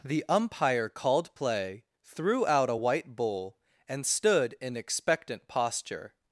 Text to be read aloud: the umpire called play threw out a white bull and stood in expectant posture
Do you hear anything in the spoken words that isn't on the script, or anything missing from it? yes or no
no